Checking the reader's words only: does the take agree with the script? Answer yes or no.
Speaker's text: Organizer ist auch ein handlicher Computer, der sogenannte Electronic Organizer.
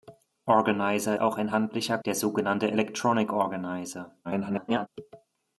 no